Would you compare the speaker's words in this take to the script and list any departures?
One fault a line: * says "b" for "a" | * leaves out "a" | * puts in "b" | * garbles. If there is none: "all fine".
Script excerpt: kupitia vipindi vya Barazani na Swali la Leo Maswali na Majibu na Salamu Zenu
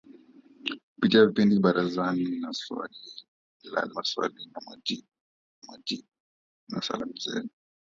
* leaves out "vya"
* leaves out "Leo"
* puts in "Majibu"